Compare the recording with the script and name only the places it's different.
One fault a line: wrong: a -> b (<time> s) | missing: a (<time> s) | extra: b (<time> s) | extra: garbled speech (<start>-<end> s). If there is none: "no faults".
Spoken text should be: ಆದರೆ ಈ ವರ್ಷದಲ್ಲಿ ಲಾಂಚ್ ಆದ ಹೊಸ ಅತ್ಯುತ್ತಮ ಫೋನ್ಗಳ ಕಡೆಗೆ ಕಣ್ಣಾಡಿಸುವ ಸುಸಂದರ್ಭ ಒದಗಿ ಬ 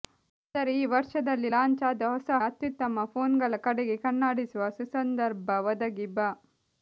no faults